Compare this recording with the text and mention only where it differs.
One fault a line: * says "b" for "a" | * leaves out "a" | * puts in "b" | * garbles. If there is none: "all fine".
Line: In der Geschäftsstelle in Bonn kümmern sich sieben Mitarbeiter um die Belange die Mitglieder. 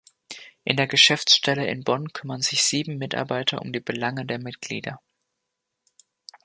* says "der" for "die"